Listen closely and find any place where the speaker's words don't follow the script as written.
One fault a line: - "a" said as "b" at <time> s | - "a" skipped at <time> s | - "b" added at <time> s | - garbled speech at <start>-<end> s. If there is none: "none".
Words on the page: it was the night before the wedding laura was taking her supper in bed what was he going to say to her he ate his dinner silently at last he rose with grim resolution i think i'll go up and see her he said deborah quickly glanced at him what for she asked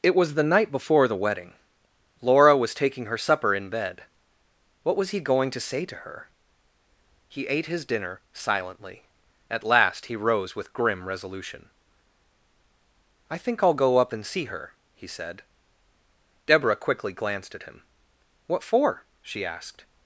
none